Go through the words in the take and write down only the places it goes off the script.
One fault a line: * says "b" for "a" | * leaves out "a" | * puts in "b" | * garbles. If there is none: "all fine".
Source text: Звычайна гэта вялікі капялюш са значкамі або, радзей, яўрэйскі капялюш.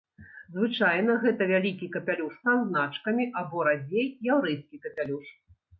all fine